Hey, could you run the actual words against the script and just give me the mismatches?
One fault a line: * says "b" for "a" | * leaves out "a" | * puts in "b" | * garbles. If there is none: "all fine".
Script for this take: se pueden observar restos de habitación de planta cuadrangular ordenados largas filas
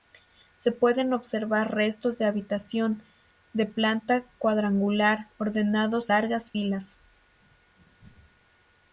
all fine